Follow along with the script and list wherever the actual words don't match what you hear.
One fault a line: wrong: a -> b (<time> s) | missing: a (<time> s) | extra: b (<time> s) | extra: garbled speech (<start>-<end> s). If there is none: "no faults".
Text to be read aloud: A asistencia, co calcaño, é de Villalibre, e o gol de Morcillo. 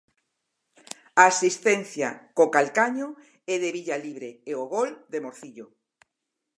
no faults